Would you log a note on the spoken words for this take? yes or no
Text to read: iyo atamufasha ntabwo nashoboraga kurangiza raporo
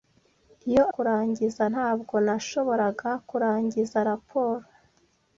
yes